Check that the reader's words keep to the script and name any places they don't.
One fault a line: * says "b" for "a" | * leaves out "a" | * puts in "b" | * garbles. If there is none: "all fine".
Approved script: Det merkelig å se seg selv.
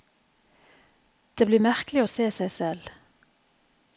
* puts in "blir"